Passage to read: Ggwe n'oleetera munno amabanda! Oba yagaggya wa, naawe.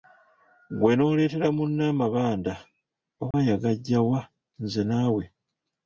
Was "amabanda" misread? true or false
false